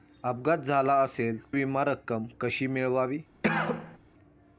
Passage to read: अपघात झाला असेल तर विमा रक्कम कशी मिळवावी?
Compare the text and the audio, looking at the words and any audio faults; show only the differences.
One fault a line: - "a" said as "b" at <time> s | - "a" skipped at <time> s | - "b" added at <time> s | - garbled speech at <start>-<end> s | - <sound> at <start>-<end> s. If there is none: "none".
- "तर" skipped at 1.4 s
- cough at 3.4-4.0 s